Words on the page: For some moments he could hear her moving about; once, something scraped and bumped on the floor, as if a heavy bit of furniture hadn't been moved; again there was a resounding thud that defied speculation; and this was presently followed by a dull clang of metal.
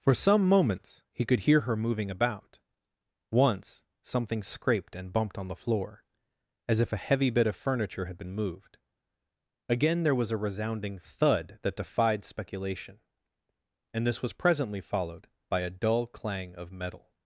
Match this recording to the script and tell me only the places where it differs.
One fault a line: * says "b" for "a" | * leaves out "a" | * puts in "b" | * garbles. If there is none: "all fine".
* says "had" for "hadn't"